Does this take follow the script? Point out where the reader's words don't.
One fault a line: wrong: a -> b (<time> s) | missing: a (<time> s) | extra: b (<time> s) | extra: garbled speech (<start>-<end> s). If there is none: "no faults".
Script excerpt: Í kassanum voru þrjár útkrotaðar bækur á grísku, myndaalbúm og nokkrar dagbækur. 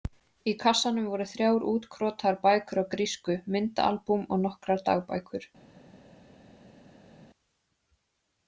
no faults